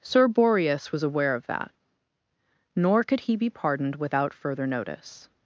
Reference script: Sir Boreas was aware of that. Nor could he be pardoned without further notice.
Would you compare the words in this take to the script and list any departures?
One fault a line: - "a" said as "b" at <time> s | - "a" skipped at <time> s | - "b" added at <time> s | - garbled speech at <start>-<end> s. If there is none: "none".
none